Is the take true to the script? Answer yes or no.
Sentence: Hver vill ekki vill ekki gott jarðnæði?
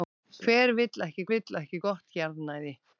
yes